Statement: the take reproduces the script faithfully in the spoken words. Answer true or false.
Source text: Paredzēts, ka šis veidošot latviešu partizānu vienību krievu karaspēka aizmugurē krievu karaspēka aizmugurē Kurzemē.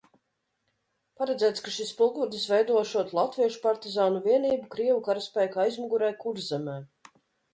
false